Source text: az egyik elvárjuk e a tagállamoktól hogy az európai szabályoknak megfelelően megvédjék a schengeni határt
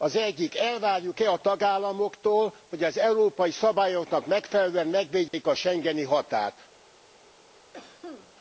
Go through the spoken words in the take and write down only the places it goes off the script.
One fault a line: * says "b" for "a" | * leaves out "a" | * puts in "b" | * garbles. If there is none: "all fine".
all fine